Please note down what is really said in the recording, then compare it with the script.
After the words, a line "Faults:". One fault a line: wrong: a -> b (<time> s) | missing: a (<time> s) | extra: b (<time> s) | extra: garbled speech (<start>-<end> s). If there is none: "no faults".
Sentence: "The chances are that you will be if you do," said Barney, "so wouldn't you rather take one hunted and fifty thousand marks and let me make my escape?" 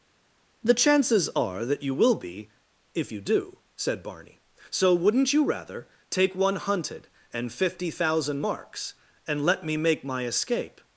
"The chances are that you will be if you do," said Barney, "so wouldn't you rather take one hunted and fifty thousand marks and let me make my escape?"
Faults:
no faults